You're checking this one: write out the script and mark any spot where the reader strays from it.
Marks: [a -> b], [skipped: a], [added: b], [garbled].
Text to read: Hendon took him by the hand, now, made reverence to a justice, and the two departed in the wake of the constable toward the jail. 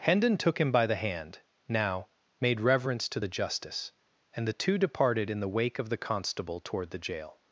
Hendon took him by the hand, now, made reverence to [a -> the] justice, and the two departed in the wake of the constable toward the jail.